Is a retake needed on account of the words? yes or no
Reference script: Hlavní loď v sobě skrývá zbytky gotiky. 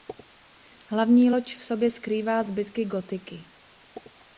no